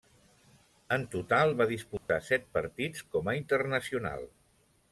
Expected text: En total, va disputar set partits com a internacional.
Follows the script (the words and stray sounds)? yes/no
no